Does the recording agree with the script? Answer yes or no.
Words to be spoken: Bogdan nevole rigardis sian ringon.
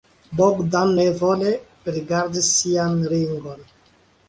yes